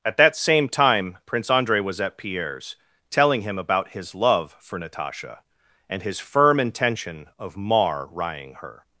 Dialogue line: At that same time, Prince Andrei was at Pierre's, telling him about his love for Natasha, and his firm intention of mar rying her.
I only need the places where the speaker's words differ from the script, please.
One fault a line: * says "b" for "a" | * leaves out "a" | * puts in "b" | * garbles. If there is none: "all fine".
all fine